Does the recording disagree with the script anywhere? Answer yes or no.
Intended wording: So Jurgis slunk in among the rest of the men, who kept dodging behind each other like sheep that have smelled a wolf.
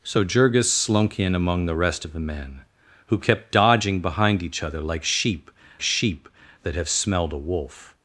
yes